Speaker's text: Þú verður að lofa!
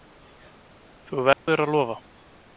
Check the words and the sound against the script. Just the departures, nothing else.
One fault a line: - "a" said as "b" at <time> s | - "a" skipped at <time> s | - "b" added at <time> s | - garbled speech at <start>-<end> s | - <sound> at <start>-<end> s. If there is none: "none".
- dropout at 1.3-1.5 s